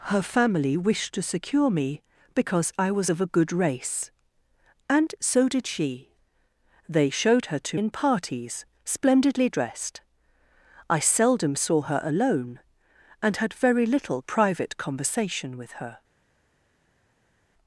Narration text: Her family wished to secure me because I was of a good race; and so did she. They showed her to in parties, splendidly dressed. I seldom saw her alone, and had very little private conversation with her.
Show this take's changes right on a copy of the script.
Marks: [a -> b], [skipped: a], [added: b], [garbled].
Her family wished to secure me because I was of a good race; and so did she. They showed her to in parties, splendidly dressed. I seldom saw her alone, and had very little private conversation with her.